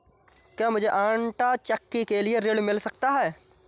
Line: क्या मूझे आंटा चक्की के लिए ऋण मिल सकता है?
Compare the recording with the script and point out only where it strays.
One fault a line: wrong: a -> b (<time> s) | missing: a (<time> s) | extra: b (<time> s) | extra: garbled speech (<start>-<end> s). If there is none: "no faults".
no faults